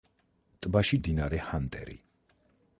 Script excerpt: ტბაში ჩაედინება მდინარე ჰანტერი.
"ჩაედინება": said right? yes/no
no